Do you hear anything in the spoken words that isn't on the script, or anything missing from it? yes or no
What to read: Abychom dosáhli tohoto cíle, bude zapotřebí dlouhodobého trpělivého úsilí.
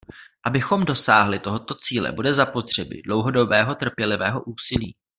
no